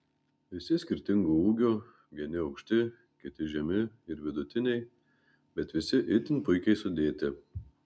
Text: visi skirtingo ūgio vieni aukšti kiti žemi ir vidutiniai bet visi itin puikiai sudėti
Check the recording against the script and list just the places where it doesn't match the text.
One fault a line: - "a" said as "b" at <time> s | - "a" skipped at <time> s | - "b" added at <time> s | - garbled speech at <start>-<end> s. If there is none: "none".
none